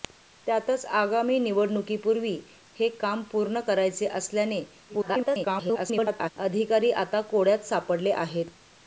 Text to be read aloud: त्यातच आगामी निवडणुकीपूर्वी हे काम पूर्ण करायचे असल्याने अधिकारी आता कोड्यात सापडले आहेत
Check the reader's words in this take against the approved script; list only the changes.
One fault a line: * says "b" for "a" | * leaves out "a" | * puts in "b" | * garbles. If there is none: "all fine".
* garbles